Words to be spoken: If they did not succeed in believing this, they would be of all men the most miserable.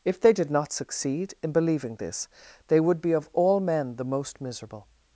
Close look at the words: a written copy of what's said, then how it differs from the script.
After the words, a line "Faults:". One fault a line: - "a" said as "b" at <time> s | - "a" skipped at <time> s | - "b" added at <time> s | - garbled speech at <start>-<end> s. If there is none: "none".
If they did not succeed in believing this, they would be of all men the most miserable.
Faults:
none